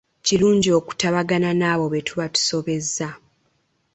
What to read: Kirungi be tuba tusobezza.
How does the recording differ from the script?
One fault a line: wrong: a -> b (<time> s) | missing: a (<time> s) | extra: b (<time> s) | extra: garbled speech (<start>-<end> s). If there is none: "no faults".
extra: okutabagana n'abo (0.8 s)